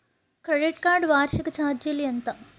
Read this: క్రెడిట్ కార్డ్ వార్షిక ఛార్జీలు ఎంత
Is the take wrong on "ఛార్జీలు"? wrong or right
right